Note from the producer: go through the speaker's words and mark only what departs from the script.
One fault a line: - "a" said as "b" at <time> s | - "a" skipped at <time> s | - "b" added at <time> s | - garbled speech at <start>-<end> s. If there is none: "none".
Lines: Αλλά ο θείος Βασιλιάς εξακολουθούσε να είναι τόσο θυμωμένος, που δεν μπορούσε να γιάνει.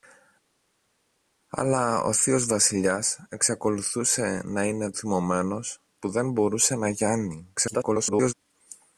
- "τόσο" skipped at 4.9 s
- garbled speech at 7.5-8.3 s